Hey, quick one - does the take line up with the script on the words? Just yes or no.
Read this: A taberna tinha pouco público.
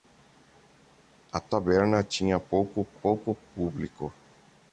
no